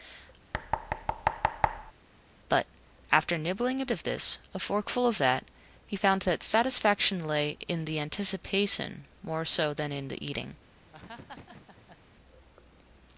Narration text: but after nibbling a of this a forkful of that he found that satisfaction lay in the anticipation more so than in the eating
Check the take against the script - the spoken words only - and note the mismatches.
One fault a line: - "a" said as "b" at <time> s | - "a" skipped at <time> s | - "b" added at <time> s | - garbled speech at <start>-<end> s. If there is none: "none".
none